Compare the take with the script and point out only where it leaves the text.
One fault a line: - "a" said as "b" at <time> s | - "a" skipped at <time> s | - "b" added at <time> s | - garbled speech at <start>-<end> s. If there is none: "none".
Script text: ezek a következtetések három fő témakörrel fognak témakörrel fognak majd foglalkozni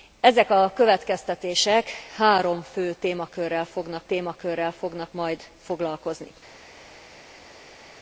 none